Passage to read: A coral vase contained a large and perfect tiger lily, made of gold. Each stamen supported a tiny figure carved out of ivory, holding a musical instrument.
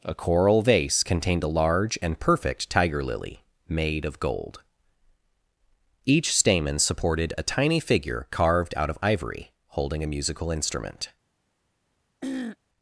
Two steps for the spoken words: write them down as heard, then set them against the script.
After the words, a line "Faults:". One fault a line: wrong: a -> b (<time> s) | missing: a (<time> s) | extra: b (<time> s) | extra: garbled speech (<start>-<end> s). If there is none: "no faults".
A coral vase contained a large and perfect tiger lily, made of gold. Each stamen supported a tiny figure carved out of ivory, holding a musical instrument.
Faults:
no faults